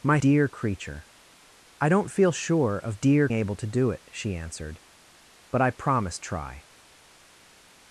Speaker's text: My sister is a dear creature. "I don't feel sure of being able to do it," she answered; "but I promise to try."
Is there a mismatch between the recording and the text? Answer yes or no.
yes